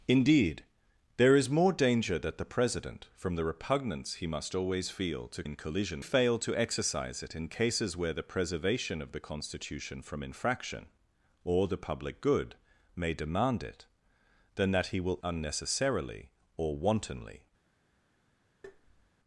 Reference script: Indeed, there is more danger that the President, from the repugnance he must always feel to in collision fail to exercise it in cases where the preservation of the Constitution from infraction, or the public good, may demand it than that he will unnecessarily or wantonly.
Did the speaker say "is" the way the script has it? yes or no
yes